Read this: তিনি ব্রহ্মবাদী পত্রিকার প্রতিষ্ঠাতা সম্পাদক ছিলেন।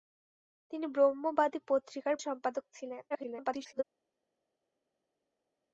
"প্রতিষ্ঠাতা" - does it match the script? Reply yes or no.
no